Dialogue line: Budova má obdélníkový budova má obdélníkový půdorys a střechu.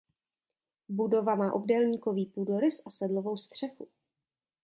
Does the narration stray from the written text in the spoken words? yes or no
yes